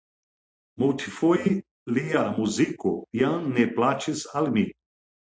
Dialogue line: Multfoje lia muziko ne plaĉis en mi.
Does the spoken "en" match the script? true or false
false